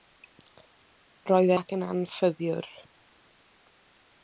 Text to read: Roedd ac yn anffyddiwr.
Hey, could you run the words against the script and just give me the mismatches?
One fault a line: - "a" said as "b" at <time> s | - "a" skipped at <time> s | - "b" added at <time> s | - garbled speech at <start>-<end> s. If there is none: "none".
none